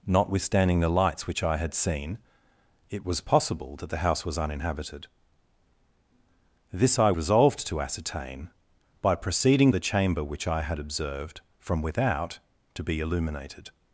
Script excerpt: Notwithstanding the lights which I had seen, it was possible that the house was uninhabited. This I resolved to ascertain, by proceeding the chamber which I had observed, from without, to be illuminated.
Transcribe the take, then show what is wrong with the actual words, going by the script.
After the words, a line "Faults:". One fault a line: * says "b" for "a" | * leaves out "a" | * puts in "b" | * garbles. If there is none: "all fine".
Notwithstanding the lights which I had seen, it was possible that the house was uninhabited. This I resolved to ascertain, by proceeding the chamber which I had observed, from without, to be illuminated.
Faults:
all fine